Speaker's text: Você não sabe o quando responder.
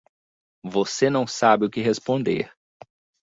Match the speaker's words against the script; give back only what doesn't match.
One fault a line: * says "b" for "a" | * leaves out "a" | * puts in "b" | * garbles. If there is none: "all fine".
* says "que" for "quando"